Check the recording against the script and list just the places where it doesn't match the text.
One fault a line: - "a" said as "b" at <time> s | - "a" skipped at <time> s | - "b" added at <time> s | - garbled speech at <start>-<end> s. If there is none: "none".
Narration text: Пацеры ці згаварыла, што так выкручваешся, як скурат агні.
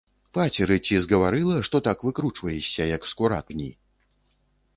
none